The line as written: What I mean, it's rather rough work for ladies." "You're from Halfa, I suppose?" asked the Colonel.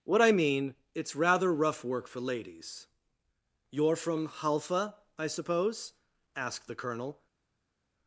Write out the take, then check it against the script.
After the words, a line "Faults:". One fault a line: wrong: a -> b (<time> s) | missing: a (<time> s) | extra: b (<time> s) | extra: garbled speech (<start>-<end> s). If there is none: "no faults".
What I mean, it's rather rough work for ladies." "You're from Halfa, I suppose?" asked the Colonel.
Faults:
no faults